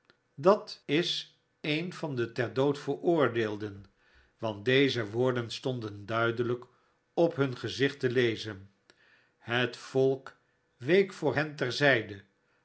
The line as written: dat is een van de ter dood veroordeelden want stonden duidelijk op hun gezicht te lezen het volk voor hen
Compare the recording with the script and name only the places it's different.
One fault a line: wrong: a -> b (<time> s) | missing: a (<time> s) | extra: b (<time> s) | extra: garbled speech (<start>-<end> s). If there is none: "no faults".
extra: deze woorden (4.7 s)
extra: week (10.8 s)